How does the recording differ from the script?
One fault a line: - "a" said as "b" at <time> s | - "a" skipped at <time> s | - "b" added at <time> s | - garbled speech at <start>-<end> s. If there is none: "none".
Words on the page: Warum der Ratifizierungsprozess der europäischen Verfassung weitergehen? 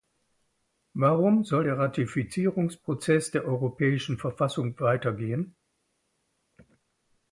- "soll" added at 1.4 s